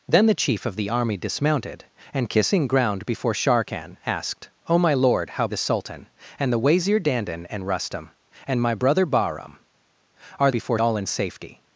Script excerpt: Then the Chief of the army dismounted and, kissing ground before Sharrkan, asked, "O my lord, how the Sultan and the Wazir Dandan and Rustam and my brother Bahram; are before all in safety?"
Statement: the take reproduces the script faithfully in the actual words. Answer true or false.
true